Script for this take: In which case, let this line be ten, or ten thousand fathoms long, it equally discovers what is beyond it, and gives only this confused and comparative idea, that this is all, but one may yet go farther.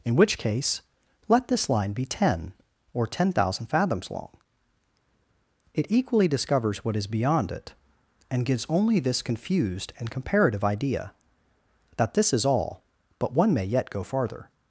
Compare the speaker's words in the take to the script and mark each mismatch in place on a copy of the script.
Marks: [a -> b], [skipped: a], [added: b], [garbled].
In which case, let this line be ten, or ten thousand fathoms long, it equally discovers what is beyond it, and gives only this confused and comparative idea, that this is all, but one may yet go farther.